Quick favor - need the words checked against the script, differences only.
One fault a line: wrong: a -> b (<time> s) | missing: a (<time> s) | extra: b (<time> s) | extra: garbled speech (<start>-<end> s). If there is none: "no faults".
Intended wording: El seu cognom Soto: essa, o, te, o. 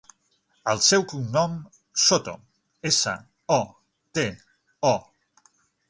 no faults